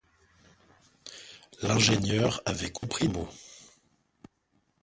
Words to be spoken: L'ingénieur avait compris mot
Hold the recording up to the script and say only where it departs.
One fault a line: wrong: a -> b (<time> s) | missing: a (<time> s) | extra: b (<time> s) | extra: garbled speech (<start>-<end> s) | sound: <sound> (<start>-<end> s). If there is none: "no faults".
sound: dropout (2.8-2.8 s)